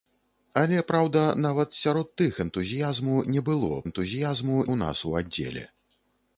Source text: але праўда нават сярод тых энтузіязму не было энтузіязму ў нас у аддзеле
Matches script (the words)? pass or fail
pass